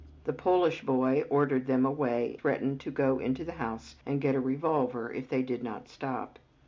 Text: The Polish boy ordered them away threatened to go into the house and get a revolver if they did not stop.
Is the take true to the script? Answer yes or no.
yes